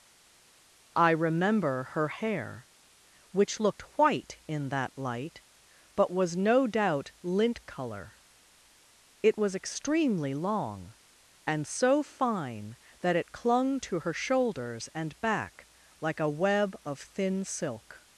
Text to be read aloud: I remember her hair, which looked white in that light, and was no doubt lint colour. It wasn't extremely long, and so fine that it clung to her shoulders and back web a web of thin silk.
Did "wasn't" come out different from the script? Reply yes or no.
yes